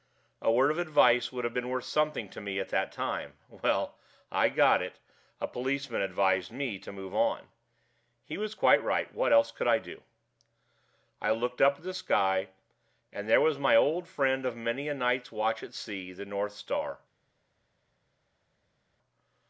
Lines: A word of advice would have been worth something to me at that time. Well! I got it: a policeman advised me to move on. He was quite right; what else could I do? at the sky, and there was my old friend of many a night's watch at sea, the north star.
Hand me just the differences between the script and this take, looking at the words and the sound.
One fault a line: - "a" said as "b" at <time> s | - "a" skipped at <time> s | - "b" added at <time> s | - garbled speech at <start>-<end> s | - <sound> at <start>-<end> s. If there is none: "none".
- "I looked up" added at 11.2 s